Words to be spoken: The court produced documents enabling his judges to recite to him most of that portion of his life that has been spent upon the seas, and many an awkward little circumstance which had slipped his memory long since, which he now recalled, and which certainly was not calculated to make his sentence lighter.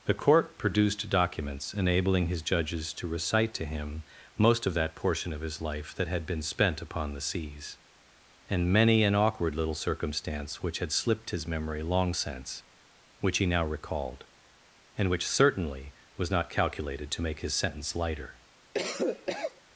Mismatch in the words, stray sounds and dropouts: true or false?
true